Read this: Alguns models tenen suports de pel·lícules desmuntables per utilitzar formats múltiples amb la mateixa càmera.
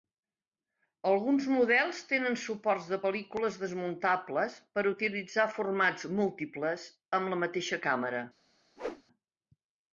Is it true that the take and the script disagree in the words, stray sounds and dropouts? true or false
true